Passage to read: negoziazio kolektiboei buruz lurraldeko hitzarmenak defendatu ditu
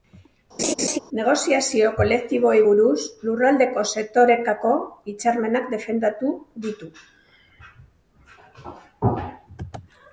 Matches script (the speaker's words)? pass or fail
fail